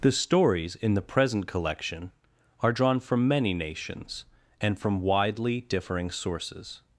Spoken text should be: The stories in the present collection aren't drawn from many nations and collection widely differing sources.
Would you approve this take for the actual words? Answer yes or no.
no